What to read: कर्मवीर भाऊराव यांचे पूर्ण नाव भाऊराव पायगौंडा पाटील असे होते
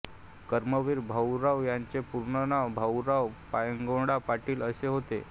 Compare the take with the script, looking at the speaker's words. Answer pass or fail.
pass